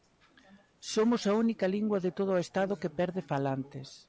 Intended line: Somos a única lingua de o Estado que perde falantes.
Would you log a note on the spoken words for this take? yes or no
yes